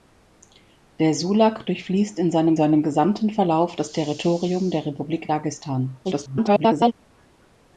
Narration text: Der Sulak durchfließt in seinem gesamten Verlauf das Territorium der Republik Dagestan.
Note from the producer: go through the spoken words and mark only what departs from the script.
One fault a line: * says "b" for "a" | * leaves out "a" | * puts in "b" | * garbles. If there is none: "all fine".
* puts in "seinem"
* garbles